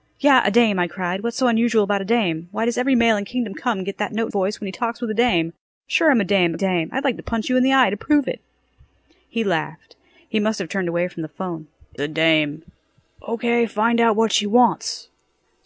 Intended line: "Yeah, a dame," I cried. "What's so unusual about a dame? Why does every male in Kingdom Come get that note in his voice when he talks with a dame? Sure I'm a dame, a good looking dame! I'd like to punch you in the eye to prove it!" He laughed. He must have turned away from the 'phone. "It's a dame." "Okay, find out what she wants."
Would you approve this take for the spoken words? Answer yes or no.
no